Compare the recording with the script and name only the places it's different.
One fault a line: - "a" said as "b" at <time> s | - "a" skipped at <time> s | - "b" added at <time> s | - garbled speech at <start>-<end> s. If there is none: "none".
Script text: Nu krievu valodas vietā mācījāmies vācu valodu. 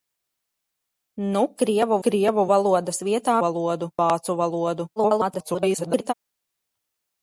- "krievu" added at 2.0 s
- "mācījāmies" said as "valodu" at 3.4 s
- garbled speech at 5.0-6.1 s